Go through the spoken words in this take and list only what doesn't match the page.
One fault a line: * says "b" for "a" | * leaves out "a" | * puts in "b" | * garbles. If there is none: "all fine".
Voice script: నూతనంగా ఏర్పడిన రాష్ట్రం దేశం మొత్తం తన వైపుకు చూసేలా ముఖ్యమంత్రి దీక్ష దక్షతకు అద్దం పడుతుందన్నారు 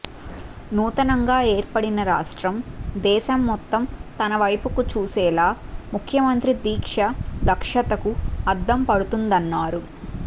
all fine